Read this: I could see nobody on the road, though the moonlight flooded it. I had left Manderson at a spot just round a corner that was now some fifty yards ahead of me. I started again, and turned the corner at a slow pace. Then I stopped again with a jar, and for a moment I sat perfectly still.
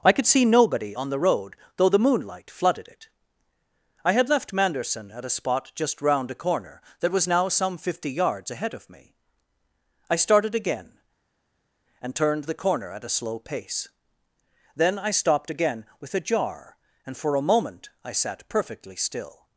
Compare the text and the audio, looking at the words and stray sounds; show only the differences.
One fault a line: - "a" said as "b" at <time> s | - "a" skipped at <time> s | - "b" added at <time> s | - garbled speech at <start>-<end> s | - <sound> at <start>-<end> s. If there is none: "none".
none